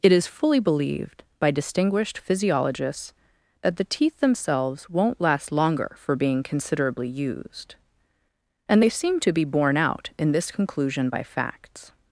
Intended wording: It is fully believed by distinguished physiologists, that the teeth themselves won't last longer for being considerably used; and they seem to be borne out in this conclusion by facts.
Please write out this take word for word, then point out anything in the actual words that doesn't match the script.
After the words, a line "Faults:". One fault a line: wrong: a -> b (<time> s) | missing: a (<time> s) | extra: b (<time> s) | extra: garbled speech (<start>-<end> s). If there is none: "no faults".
It is fully believed by distinguished physiologists, that the teeth themselves won't last longer for being considerably used; and they seem to be borne out in this conclusion by facts.
Faults:
no faults